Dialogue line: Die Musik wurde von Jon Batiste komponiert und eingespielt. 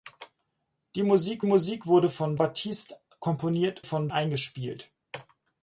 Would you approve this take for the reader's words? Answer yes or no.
no